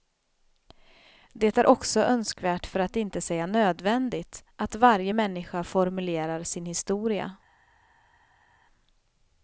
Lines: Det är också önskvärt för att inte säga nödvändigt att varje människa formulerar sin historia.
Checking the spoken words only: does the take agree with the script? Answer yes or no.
yes